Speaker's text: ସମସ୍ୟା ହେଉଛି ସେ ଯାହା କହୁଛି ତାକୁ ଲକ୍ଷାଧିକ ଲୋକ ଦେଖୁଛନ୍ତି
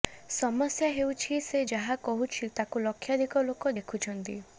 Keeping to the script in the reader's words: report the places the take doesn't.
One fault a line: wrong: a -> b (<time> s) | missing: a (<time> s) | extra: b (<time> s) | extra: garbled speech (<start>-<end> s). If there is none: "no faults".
no faults